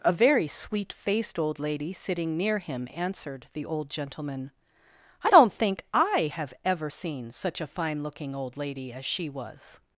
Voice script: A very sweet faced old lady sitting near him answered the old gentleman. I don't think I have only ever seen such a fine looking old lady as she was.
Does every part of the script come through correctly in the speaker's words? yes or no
no